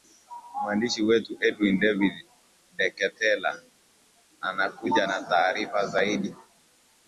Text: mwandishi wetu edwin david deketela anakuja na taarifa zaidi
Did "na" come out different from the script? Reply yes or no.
no